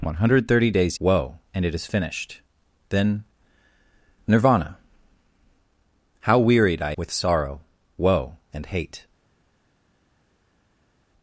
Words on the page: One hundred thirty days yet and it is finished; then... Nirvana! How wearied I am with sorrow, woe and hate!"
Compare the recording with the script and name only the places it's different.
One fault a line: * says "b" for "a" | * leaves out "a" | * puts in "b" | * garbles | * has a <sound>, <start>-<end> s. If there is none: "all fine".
* says "woe" for "yet"
* leaves out "am"